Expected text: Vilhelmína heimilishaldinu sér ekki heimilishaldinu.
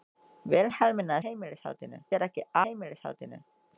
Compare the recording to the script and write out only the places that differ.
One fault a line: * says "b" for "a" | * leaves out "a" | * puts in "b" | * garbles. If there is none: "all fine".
all fine